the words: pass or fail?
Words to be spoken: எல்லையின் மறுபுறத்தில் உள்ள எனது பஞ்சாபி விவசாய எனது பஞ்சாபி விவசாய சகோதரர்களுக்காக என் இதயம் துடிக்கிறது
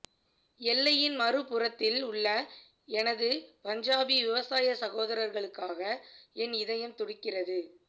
fail